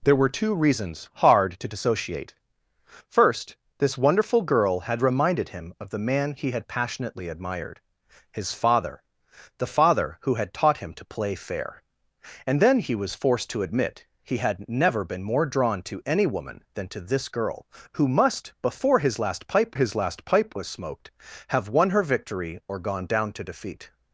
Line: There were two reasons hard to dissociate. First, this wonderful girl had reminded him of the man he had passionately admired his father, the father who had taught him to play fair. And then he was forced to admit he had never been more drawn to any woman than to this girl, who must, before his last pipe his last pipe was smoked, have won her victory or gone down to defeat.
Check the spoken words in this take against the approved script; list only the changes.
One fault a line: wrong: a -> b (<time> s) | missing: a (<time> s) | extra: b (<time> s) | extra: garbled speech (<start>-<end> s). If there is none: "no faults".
no faults